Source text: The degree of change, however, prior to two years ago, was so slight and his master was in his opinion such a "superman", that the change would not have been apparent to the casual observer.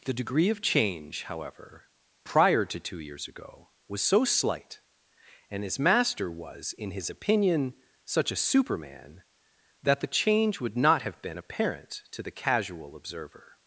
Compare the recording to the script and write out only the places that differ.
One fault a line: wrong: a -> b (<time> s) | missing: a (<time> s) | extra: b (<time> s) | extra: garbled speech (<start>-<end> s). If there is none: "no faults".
no faults